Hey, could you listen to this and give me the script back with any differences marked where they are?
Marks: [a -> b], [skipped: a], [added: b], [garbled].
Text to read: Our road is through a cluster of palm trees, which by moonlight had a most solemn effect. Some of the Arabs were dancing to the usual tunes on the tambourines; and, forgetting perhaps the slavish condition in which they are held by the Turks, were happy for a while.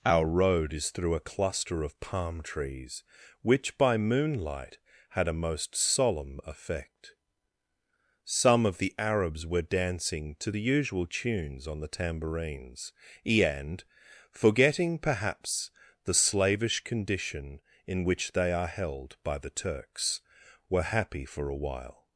Our road is through a cluster of palm trees, which by moonlight had a most solemn effect. Some of the Arabs were dancing to the usual tunes on the tambourines; and, forgetting perhaps the slavish condition in which they are held by the Turks, were happy for a while.